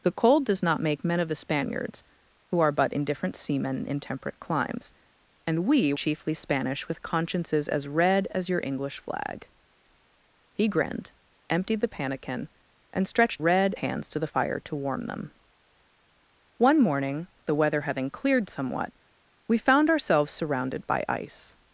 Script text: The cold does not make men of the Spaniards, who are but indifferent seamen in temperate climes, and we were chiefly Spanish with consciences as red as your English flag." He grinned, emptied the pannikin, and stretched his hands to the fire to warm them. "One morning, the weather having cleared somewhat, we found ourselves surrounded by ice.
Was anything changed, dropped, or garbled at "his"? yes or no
yes